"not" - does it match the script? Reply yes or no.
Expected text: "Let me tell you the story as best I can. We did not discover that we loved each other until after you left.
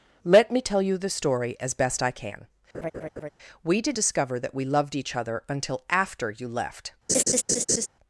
no